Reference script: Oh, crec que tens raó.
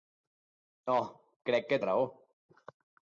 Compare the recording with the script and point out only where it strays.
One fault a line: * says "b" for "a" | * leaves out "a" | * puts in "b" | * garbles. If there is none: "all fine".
* leaves out "tens"